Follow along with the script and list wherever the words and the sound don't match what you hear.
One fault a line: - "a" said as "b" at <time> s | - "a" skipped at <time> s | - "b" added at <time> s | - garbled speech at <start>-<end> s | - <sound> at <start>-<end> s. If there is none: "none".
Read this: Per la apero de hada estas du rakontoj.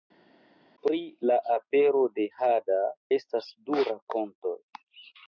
- "Per" said as "Pri" at 0.8 s